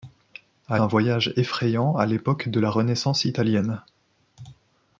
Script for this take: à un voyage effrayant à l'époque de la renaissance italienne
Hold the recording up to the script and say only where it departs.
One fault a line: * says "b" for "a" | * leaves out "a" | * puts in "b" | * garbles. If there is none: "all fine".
all fine